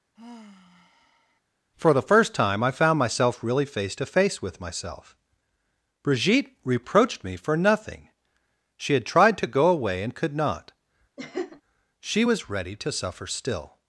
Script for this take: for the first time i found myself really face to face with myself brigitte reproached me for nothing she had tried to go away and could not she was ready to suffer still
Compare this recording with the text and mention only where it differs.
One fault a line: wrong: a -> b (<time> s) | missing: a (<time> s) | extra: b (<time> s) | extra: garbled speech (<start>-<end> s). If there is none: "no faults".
no faults